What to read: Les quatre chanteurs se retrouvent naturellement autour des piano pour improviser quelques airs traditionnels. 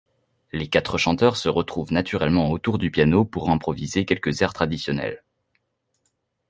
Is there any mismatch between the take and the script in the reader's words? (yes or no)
yes